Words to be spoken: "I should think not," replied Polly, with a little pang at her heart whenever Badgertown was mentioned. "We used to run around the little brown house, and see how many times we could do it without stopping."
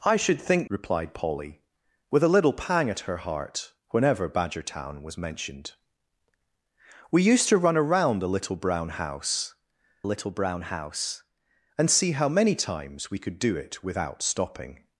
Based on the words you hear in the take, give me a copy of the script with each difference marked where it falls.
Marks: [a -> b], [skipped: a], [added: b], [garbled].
"I should think [skipped: not,"] replied Polly, with a little pang at her heart whenever Badgertown was mentioned. "We used to run around the little brown house, [added: little brown house] and see how many times we could do it without stopping."